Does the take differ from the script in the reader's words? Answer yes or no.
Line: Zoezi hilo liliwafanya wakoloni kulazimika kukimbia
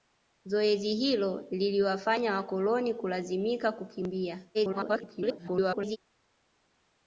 yes